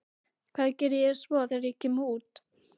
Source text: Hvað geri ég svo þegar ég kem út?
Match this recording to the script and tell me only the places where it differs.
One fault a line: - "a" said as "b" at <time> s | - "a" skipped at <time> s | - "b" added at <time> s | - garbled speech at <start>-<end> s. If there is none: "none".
none